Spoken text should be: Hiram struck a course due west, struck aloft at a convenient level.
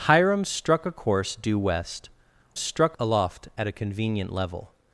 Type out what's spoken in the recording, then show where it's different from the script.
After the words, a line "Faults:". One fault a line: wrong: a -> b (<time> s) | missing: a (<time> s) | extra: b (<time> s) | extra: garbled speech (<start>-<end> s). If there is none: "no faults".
Hiram struck a course due west, struck aloft at a convenient level.
Faults:
no faults